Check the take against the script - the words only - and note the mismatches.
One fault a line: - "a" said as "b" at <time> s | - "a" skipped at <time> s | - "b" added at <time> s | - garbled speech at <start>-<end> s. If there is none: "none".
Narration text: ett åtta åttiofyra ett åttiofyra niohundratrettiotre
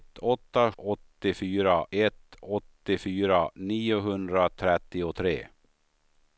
none